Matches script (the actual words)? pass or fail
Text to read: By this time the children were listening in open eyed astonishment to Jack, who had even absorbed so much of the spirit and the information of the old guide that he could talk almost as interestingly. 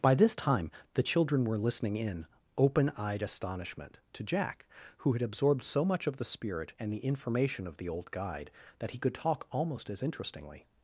fail